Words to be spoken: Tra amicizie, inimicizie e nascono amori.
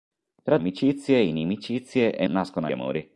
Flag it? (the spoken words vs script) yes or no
no